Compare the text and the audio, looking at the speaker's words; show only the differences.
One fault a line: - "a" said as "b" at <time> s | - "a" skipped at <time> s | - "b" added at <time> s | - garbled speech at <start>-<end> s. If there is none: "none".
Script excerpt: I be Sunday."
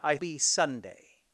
none